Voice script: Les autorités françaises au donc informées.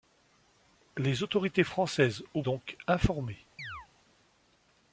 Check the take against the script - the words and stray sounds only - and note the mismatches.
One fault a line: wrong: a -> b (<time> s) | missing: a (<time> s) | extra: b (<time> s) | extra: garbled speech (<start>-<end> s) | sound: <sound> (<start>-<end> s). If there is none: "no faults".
sound: chirp (3.6-3.9 s)